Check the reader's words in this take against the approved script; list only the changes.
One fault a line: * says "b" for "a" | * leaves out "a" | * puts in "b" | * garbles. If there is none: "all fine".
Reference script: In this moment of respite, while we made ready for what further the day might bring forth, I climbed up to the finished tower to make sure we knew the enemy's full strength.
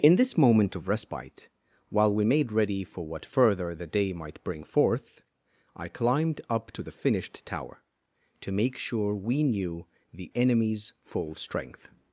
all fine